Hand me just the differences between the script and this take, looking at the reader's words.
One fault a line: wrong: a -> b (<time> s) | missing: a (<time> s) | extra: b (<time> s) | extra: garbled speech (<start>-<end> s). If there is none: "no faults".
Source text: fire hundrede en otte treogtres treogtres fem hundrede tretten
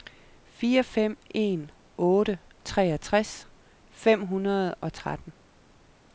wrong: hundrede -> fem (0.8 s)
missing: treogtres (3.5 s)
extra: og (4.7 s)